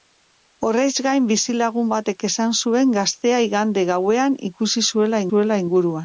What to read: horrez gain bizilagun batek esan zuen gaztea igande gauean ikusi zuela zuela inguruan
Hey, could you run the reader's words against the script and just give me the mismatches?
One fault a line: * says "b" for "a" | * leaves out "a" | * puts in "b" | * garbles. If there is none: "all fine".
all fine